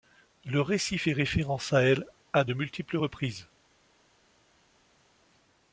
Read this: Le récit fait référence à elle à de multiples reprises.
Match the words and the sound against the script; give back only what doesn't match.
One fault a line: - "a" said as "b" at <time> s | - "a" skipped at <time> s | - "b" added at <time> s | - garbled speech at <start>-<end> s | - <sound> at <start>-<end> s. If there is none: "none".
none